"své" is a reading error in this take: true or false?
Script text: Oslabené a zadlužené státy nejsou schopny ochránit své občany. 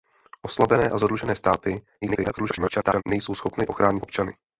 true